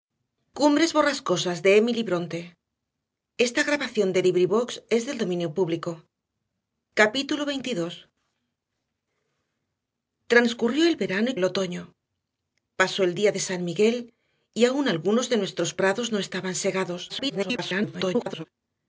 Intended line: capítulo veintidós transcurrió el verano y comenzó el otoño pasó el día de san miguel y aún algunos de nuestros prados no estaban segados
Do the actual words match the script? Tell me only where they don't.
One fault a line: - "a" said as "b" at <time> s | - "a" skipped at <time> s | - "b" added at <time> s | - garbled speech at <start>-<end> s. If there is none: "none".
- "comenzó" skipped at 11.4 s
- garbled speech at 17.1-18.5 s